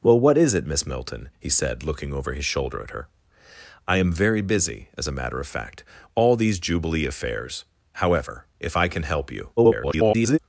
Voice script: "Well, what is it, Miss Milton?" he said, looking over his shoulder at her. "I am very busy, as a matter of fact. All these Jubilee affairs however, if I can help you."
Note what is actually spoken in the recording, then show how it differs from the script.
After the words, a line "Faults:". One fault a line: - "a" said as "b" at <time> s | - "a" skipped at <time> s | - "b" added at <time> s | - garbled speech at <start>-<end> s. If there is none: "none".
"Well, what is it, Miss Milton?" he said, looking over his shoulder at her. "I am very busy, as a matter of fact. All these Jubilee affairs however, if I can help you." [garbled]
Faults:
- garbled speech at 9.6-10.4 s